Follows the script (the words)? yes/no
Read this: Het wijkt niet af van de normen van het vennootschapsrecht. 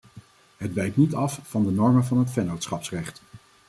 yes